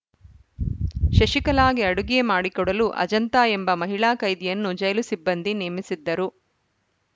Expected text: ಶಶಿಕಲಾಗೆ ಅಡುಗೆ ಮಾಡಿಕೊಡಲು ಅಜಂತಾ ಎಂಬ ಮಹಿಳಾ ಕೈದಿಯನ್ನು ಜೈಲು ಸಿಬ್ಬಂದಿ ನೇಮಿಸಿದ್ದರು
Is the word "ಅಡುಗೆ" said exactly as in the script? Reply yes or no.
yes